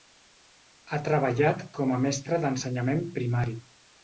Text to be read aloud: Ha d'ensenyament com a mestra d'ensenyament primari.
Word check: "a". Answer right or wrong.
right